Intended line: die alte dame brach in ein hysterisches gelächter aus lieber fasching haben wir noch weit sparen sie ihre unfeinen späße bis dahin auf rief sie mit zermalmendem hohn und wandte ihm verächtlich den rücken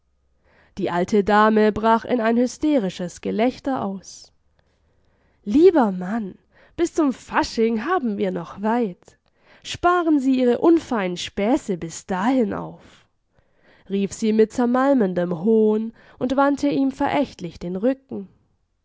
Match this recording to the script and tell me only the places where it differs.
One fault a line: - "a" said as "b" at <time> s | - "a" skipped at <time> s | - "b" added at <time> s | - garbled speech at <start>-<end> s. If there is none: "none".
- "mann bis zum" added at 5.9 s